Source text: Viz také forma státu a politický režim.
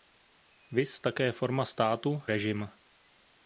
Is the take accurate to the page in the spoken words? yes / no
no